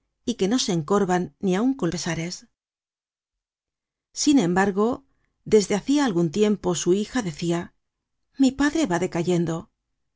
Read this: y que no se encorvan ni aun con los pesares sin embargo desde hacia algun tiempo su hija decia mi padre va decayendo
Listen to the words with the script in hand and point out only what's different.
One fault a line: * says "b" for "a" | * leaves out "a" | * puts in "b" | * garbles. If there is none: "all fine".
* leaves out "los"